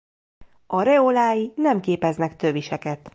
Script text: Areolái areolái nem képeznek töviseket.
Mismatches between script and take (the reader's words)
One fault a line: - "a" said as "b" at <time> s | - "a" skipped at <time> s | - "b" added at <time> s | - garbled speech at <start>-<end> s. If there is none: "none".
- "areolái" skipped at 1.6 s